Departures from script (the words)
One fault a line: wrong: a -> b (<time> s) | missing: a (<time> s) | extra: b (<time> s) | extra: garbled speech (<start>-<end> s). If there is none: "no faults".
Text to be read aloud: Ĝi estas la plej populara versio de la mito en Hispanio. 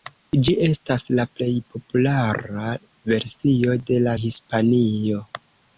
missing: mito en (4.2 s)